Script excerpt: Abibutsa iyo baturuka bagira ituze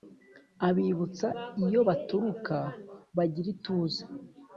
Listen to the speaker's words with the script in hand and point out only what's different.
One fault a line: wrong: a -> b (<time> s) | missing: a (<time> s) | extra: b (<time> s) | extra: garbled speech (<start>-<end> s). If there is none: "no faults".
no faults